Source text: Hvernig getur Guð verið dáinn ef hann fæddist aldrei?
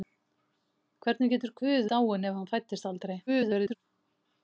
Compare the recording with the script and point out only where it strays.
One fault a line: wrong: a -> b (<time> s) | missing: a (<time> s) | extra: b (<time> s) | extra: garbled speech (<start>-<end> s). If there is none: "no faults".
missing: verið (1.9 s)
extra: garbled speech (3.3-3.8 s)